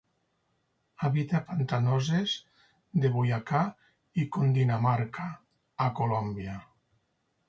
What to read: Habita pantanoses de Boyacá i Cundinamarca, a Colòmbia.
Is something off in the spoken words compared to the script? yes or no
no